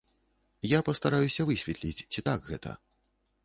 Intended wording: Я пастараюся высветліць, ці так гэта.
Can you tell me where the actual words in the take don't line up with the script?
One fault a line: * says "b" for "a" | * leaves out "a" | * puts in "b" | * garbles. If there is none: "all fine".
all fine